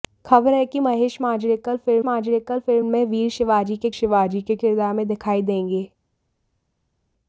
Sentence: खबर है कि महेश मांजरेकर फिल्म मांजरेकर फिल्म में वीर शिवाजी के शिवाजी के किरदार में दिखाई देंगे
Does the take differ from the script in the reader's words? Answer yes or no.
no